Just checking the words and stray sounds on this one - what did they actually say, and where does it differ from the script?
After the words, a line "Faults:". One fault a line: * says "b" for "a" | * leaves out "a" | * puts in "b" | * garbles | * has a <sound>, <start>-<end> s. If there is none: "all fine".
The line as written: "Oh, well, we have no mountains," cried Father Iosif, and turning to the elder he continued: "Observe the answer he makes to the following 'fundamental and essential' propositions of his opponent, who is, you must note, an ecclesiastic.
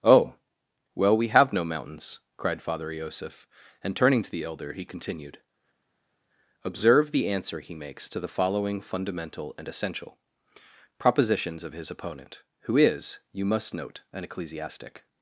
"Oh, well, we have no mountains," cried Father Iosif, and turning to the elder he continued: "Observe the answer he makes to the following 'fundamental and essential' propositions of his opponent, who is, you must note, an ecclesiastic.
Faults:
all fine